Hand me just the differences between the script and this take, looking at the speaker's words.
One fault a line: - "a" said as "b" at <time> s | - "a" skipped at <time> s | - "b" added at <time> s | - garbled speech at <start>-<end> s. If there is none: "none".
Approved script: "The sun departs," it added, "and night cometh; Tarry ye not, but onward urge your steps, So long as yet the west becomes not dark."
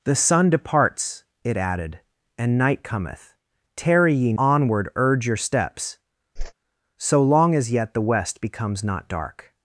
- "not but" skipped at 4.3 s